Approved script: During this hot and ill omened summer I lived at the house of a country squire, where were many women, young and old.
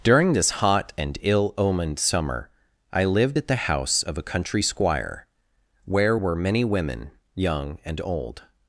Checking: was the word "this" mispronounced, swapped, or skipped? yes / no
no